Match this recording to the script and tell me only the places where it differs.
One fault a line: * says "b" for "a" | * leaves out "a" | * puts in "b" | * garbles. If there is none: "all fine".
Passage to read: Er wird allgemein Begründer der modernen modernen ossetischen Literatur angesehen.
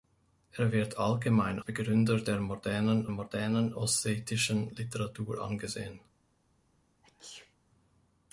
all fine